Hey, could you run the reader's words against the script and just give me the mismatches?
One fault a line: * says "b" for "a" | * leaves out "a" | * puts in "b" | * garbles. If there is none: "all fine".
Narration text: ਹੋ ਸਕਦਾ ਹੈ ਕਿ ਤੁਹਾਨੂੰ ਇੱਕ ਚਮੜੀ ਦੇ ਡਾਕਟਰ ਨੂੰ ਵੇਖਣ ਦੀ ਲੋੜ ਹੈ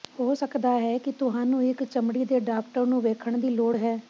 all fine